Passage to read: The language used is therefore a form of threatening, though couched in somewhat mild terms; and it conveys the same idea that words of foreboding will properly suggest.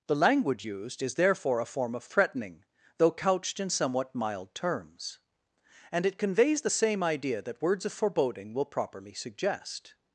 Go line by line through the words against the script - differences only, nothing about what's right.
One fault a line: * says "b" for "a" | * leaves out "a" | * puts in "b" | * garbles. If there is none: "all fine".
all fine